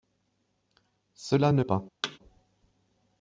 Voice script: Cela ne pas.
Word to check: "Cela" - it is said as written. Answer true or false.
true